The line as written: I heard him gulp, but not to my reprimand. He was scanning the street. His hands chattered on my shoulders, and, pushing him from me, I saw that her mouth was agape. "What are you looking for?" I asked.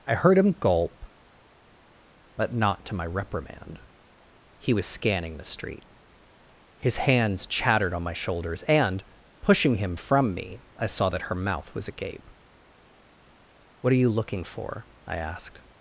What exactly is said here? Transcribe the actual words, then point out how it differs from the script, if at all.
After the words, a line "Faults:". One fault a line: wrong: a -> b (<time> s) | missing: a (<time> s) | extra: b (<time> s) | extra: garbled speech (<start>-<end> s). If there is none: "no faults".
I heard him gulp, but not to my reprimand. He was scanning the street. His hands chattered on my shoulders, and, pushing him from me, I saw that her mouth was agape. "What are you looking for?" I asked.
Faults:
no faults